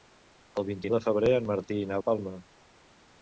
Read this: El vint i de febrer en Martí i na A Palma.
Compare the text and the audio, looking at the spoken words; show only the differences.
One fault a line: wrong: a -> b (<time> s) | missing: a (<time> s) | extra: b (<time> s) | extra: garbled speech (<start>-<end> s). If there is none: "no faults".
no faults